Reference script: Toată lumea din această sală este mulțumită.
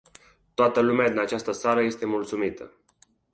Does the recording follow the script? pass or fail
pass